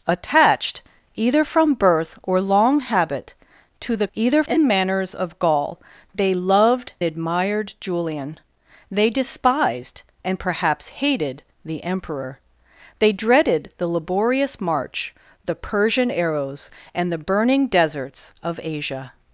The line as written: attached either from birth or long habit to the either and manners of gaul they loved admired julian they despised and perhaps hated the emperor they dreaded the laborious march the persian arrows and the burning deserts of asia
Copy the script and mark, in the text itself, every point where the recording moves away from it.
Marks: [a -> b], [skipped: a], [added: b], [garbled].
attached either from birth or long habit to the either and manners of gaul they loved admired julian they despised and perhaps hated the emperor they dreaded the laborious march the persian arrows and the burning deserts of asia